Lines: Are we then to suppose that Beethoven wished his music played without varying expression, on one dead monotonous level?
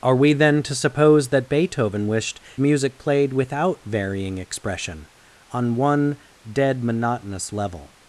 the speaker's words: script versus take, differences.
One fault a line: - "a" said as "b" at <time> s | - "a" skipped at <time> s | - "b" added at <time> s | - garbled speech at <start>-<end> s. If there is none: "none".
- "his" skipped at 2.4 s